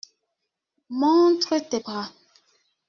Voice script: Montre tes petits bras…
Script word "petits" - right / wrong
wrong